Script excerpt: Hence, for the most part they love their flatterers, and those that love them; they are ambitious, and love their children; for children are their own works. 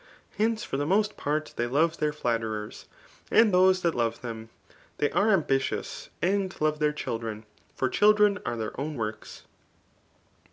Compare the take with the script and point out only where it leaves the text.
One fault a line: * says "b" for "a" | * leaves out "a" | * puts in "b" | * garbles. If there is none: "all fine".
all fine